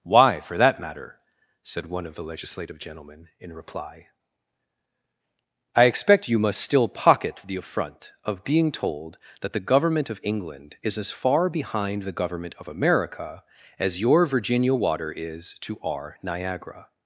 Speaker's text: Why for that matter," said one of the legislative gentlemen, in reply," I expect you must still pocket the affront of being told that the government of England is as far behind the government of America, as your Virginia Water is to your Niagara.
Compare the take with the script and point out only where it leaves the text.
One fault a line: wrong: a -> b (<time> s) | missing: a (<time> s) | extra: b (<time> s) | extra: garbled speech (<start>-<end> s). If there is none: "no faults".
wrong: your -> our (15.8 s)